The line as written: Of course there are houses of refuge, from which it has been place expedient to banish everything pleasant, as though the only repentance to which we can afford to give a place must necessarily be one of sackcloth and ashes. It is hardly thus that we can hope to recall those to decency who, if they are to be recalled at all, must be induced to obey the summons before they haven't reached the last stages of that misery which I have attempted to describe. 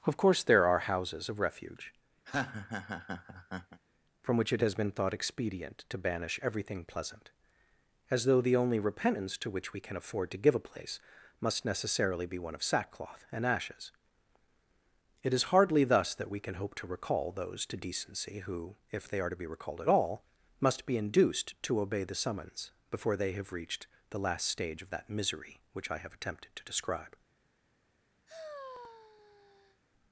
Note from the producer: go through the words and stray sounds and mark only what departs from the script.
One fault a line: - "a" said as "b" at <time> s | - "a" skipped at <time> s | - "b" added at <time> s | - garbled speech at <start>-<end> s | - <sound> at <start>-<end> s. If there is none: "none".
- laugh at 2.3-3.8 s
- "place" said as "thought" at 4.9 s
- "haven't" said as "have" at 23.3 s
- "stages" said as "stage" at 24.5 s
- sigh at 28.3-29.8 s